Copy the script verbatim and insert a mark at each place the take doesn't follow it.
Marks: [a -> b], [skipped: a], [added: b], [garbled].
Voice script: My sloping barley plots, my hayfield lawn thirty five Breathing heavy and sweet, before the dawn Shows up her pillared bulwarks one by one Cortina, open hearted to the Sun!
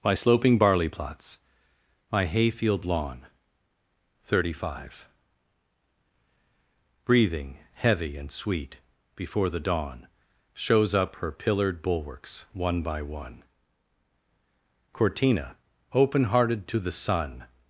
My sloping barley plots, my hayfield lawn thirty five Breathing heavy and sweet, before the dawn Shows up her pillared bulwarks one by one Cortina, open hearted to the Sun!